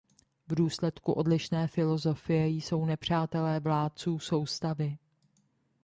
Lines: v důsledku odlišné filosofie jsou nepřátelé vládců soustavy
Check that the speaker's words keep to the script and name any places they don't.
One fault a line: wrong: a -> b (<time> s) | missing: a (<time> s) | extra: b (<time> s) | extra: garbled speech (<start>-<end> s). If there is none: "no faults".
no faults